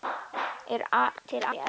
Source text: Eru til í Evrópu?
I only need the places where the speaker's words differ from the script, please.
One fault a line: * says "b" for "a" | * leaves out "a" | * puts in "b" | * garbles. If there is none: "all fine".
all fine